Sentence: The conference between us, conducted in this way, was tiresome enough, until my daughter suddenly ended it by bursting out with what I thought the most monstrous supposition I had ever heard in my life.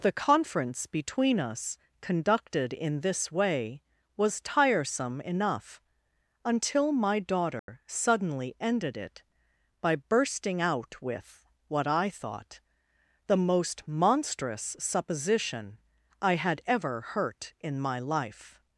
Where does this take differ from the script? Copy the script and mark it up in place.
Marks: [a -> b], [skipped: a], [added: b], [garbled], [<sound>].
The conference between us, conducted in this way, was tiresome enough, until my daughter [dropout] suddenly ended it by bursting out with what I thought the most monstrous supposition I had ever [heard -> hurt] in my life.